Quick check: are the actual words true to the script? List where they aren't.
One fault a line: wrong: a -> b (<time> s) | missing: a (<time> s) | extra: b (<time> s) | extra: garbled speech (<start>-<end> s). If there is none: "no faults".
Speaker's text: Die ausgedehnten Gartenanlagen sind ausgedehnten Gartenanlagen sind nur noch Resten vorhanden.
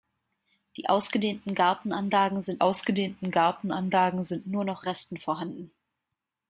no faults